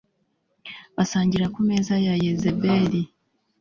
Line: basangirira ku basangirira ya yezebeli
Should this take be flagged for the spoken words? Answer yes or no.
yes